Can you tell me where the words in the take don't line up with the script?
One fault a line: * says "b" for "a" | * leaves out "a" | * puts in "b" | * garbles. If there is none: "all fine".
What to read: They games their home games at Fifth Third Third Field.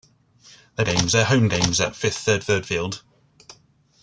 all fine